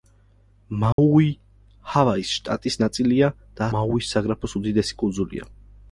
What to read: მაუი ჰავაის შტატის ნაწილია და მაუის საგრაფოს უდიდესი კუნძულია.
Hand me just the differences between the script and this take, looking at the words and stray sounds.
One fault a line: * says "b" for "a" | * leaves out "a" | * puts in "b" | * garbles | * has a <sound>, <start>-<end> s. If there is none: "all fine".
* has a dropout, 0.9-1.0 s